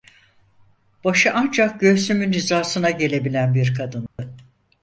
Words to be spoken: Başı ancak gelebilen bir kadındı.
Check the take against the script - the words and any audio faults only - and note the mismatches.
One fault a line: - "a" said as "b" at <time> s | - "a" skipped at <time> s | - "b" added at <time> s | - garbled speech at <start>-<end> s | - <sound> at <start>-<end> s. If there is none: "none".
- "göğsümün hizasına" added at 1.8 s
- dropout at 4.1-4.2 s